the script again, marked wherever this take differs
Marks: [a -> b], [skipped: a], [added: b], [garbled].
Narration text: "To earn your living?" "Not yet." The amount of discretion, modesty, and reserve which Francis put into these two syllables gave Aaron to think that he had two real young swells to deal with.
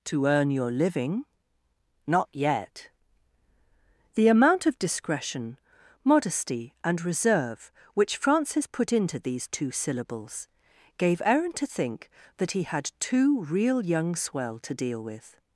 "To earn your living?" "Not yet." The amount of discretion, modesty, and reserve which Francis put into these two syllables gave Aaron to think that he had two real young [swells -> swell] to deal with.